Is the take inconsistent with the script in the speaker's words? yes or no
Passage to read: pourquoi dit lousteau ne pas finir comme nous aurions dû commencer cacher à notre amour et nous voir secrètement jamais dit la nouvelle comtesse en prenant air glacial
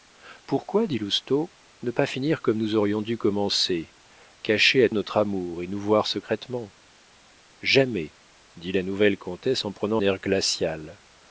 no